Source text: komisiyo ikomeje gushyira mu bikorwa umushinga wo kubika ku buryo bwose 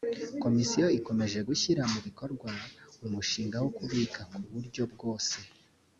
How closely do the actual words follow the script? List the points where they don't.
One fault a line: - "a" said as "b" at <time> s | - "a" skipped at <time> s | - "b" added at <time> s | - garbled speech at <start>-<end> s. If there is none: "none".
none